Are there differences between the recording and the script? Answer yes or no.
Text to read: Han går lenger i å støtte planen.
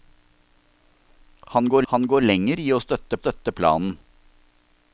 yes